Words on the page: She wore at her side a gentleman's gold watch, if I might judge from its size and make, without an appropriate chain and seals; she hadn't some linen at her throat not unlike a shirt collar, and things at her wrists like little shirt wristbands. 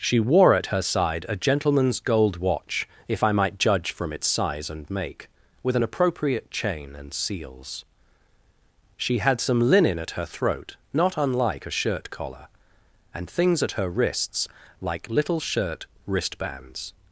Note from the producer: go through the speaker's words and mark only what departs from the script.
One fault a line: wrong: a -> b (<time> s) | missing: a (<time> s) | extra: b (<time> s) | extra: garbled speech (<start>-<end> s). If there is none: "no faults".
wrong: without -> with (5.6 s)
wrong: hadn't -> had (9.2 s)